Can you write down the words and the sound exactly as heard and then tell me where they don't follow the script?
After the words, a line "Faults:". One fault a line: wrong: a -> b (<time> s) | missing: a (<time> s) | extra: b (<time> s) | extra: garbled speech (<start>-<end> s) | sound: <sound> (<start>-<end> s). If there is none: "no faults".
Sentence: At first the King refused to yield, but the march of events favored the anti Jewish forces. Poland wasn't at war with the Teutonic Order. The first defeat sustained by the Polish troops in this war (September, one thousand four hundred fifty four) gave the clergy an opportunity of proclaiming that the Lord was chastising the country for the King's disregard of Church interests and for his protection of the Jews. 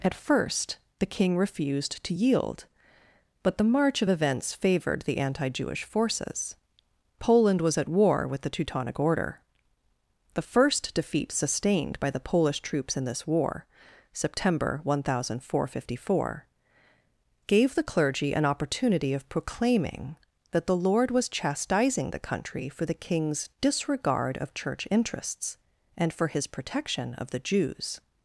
At first the King refused to yield, but the march of events favored the anti Jewish forces. Poland was at war with the Teutonic Order. The first defeat sustained by the Polish troops in this war (September, one thousand four hundred fifty four) gave the clergy an opportunity of proclaiming that the Lord was chastising the country for the King's disregard of Church interests and for his protection of the Jews.
Faults:
wrong: wasn't -> was (7.6 s)